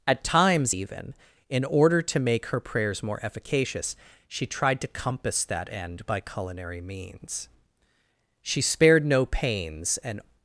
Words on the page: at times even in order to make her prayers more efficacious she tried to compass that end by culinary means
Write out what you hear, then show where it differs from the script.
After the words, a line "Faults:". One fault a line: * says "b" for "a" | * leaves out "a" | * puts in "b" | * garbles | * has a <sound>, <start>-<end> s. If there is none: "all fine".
at times even in order to make her prayers more efficacious she tried to compass that end by culinary means she spared no pains and
Faults:
* puts in "she spared no pains and"